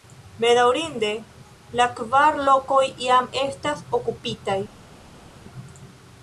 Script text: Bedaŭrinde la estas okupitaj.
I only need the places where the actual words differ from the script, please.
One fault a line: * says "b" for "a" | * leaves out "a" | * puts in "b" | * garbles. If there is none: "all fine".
* puts in "kvar lokoj jam"